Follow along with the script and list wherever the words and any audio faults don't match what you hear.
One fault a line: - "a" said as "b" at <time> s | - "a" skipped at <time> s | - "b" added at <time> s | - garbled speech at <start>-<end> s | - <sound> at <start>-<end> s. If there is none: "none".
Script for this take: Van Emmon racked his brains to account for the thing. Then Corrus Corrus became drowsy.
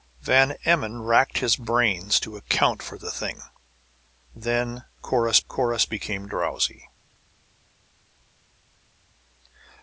none